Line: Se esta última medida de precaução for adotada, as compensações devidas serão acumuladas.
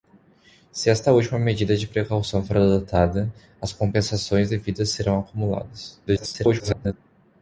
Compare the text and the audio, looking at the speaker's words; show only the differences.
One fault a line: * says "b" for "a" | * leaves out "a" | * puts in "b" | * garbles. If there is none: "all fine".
* garbles